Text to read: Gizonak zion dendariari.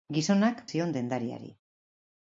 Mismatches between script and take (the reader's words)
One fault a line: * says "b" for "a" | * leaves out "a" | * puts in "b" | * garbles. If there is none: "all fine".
all fine